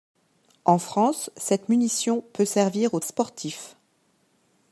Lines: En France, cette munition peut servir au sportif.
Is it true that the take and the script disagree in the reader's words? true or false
false